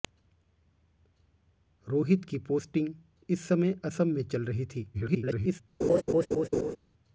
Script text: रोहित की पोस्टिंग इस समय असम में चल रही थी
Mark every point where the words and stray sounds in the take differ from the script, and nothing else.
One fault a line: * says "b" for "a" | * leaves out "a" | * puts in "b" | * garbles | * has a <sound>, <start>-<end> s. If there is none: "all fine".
* garbles
* has a laugh, 5.8-6.8 s